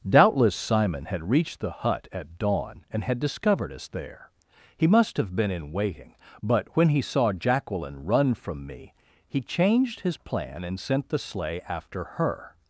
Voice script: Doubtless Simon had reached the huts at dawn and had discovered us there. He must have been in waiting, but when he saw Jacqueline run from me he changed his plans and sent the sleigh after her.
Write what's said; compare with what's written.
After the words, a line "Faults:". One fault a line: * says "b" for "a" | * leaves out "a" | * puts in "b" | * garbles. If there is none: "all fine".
Doubtless Simon had reached the hut at dawn and had discovered us there. He must have been in waiting, but when he saw Jacqueline run from me he changed his plan and sent the sleigh after her.
Faults:
* says "hut" for "huts"
* says "plan" for "plans"